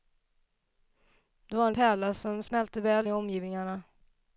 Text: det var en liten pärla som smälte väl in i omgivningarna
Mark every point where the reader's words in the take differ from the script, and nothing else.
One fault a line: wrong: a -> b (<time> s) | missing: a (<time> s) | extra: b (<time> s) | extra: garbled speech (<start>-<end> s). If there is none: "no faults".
missing: liten (1.7 s)
missing: in (3.1 s)